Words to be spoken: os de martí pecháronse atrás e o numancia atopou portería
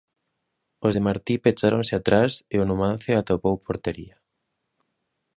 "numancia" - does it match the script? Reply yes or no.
yes